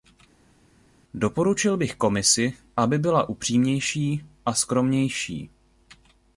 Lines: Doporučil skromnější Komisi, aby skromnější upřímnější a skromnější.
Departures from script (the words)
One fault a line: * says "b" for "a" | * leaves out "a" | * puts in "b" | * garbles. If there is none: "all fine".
* says "bych" for "skromnější"
* says "byla" for "skromnější"